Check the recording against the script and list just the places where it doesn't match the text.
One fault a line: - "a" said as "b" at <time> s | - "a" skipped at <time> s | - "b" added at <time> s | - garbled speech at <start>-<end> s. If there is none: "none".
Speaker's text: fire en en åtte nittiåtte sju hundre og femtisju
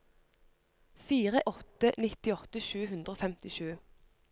- "en en" skipped at 1.4 s